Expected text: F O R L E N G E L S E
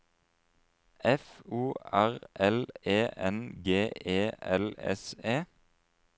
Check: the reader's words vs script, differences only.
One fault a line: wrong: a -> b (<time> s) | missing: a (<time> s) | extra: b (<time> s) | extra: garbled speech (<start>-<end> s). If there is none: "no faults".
no faults